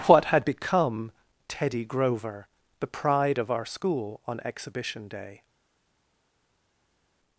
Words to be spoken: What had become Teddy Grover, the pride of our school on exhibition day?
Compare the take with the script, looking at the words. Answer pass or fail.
pass